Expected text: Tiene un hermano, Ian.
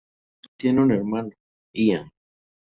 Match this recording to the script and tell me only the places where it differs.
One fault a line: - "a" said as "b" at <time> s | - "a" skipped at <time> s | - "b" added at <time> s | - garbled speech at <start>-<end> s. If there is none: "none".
none